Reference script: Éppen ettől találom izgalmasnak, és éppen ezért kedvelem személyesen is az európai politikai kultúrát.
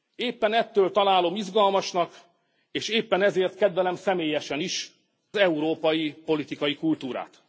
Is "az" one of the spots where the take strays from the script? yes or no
yes